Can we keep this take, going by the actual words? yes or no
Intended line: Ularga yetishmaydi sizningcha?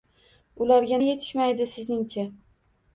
yes